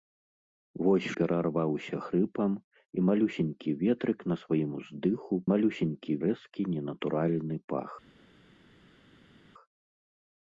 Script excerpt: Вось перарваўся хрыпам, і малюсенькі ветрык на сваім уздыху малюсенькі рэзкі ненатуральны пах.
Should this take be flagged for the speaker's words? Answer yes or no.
no